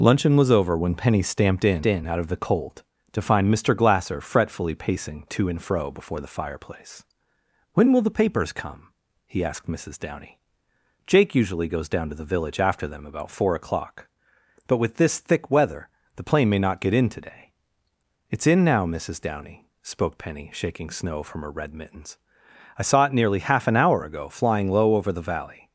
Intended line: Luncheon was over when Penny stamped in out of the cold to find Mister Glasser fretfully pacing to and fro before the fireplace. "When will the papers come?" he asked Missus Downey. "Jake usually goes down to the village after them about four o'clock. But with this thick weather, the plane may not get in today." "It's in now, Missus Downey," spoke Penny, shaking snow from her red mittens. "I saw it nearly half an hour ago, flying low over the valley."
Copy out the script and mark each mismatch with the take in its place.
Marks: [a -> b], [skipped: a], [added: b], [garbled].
Luncheon was over when Penny stamped in [added: in] out of the cold to find Mister Glasser fretfully pacing to and fro before the fireplace. "When will the papers come?" he asked Missus Downey. "Jake usually goes down to the village after them about four o'clock. But with this thick weather, the plane may not get in today." "It's in now, Missus Downey," spoke Penny, shaking snow from her red mittens. "I saw it nearly half an hour ago, flying low over the valley."